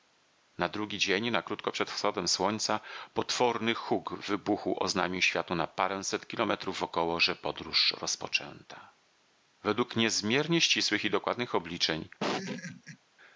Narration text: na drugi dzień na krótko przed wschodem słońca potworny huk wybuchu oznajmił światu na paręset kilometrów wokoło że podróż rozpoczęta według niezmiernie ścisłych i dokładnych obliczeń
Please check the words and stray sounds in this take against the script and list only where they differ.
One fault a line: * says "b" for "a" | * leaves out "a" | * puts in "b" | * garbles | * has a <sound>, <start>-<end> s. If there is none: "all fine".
* has a laugh, 12.2-13.0 s